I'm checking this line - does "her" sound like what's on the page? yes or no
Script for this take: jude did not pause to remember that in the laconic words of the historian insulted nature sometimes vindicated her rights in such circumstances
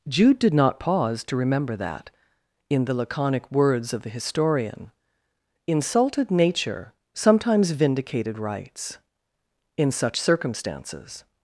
no